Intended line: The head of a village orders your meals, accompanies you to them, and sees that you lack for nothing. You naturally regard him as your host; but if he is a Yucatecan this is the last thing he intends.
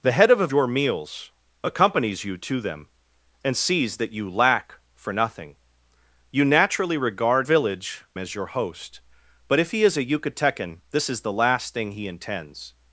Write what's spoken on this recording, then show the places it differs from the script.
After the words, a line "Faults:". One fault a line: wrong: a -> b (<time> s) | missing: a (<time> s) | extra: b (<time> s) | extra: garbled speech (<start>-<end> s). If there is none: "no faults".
The head of a your meals, accompanies you to them, and sees that you lack for nothing. You naturally regard village as your host; but if he is a Yucatecan this is the last thing he intends.
Faults:
missing: village orders (0.5 s)
wrong: him -> village (7.4 s)